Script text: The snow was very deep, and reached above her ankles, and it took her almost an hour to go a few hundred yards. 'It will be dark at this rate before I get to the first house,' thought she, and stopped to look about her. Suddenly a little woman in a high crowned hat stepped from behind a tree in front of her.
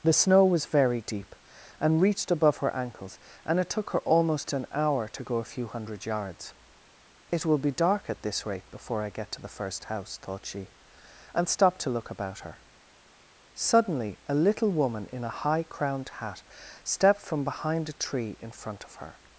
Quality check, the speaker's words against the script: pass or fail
pass